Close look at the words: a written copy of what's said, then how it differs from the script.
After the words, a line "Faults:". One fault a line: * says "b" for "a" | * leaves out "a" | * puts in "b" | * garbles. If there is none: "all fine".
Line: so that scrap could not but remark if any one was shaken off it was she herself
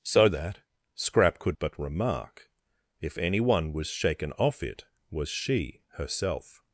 so that scrap could but remark if any one was shaken off it was she herself
Faults:
* leaves out "not"